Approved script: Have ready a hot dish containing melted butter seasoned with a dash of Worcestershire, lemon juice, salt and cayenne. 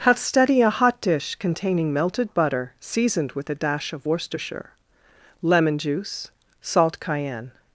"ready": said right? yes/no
no